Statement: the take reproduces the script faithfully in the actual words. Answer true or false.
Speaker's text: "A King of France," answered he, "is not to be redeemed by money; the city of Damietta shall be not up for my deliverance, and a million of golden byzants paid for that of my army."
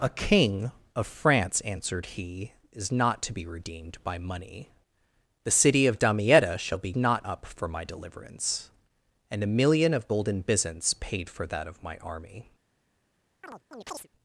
true